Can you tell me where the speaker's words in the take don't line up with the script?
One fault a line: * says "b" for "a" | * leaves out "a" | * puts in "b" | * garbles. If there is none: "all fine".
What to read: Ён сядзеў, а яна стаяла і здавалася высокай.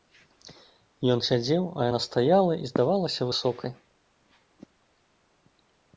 all fine